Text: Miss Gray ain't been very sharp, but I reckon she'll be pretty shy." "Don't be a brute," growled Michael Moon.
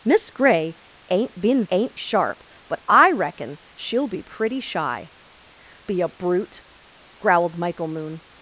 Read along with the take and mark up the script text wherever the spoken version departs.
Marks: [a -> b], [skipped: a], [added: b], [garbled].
Miss Gray ain't been [very -> ain't] sharp, but I reckon she'll be pretty shy." [skipped: "Don't] be a brute," growled Michael Moon.